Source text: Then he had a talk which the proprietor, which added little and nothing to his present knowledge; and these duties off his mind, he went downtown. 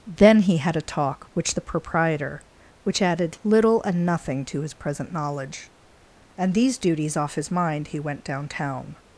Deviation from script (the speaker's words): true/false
false